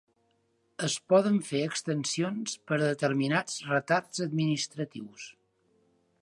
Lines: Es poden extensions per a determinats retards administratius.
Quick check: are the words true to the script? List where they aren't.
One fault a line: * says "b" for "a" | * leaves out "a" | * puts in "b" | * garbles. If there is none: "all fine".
* puts in "fer"